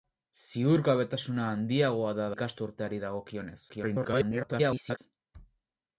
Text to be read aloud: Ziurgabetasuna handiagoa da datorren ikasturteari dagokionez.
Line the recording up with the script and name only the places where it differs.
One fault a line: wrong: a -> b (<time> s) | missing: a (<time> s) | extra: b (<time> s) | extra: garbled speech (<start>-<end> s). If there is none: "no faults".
missing: datorren (2.3 s)
extra: garbled speech (3.7-5.0 s)